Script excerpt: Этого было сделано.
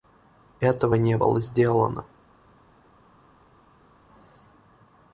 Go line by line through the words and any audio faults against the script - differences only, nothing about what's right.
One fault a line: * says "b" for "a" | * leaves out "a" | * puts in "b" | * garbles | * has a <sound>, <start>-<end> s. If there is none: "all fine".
* puts in "не"